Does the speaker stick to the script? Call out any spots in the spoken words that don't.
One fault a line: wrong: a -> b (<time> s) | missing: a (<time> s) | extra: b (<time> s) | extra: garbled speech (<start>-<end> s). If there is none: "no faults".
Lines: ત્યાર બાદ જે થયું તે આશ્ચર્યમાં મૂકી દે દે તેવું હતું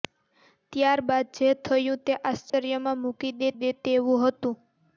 no faults